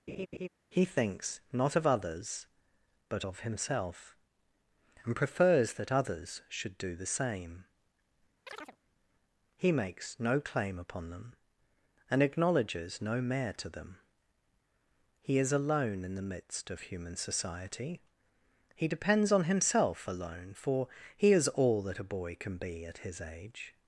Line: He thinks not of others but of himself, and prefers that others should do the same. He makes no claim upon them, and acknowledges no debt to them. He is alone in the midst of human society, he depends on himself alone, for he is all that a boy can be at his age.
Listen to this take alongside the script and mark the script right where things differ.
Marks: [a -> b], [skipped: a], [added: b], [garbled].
He thinks not of others but of himself, and prefers that others should do the same. He makes no claim upon them, and acknowledges no [debt -> mayor] to them. He is alone in the midst of human society, he depends on himself alone, for he is all that a boy can be at his age.